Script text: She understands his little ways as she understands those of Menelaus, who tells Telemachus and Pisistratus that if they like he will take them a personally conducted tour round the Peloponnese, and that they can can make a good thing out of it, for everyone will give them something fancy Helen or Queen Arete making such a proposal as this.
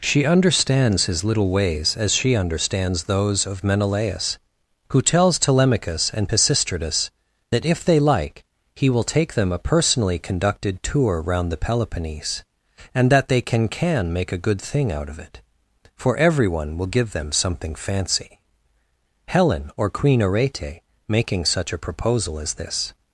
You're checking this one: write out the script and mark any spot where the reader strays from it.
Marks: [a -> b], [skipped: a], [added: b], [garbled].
She understands his little ways as she understands those of Menelaus, who tells Telemachus and Pisistratus that if they like he will take them a personally conducted tour round the Peloponnese, and that they can can make a good thing out of it, for everyone will give them something fancy Helen or Queen Arete making such a proposal as this.